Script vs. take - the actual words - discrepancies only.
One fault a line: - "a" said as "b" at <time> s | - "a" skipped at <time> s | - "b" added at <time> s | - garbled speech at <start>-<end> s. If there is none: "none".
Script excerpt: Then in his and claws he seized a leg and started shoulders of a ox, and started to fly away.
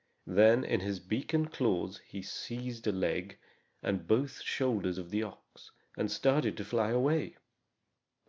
- "beak" added at 1.0 s
- "started" said as "both" at 4.1 s
- "a" said as "the" at 5.1 s